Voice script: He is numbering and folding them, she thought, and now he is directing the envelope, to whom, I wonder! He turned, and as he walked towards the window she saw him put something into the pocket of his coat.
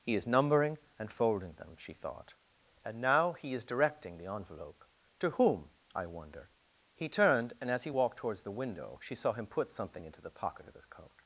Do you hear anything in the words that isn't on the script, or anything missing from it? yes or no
no